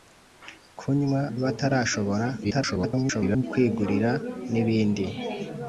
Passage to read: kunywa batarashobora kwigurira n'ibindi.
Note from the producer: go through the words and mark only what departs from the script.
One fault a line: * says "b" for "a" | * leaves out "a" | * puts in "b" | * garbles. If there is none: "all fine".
* garbles